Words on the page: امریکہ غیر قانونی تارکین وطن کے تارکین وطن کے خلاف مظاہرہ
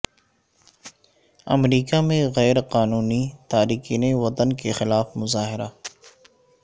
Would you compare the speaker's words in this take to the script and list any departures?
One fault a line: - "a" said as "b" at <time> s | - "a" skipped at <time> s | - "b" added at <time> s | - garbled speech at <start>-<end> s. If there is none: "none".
- "میں" added at 2.0 s
- "تارکین وطن کے" skipped at 4.7 s